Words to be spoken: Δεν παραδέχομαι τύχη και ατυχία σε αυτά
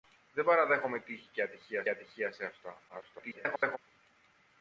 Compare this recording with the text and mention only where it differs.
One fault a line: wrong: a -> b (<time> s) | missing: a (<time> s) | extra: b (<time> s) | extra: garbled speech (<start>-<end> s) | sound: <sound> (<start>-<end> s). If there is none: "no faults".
extra: ατυχία (1.9 s)
extra: garbled speech (2.9-3.8 s)